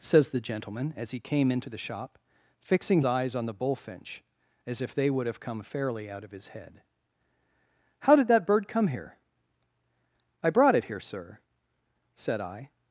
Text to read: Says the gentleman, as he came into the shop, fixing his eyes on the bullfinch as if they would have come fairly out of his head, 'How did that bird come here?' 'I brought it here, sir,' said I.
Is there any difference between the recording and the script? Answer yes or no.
yes